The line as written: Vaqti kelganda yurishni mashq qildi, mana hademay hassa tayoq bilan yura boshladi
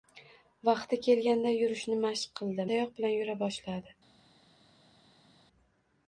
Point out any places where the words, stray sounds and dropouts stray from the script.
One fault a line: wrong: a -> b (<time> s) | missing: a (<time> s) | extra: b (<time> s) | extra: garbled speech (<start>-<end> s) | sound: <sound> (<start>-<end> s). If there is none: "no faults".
missing: mana hademay hassa (2.6 s)